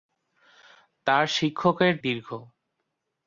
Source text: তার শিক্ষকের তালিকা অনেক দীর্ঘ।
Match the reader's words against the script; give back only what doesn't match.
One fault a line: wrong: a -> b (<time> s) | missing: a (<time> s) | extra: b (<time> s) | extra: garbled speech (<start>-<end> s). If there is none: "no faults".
missing: তালিকা অনেক (1.9 s)